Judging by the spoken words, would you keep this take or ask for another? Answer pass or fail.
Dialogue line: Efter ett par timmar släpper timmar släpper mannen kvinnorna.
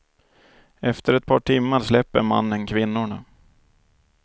fail